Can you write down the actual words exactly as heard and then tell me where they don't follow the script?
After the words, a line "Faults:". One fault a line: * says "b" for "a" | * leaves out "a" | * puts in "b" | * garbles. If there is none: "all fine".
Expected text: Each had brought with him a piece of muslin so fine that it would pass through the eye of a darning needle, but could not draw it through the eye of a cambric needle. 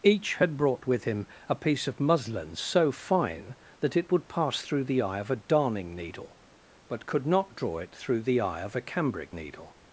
Each had brought with him a piece of muslin so fine that it would pass through the eye of a darning needle, but could not draw it through the eye of a cambric needle.
Faults:
all fine